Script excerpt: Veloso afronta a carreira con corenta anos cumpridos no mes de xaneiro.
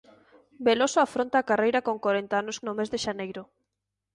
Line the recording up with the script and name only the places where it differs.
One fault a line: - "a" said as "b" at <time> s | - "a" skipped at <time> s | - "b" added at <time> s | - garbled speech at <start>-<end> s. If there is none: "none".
- "cumpridos" skipped at 2.6 s